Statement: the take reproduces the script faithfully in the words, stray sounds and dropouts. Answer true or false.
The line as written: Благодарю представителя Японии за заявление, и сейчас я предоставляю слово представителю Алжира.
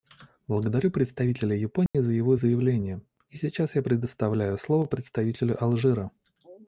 false